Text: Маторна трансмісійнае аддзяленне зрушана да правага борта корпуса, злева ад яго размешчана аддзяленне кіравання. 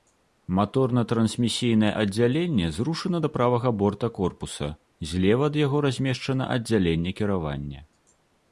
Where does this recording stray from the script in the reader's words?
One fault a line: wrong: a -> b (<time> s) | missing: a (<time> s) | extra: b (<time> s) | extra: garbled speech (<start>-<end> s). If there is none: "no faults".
no faults